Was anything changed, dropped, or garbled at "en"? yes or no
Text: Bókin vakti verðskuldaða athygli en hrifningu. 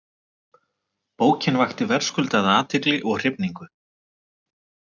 yes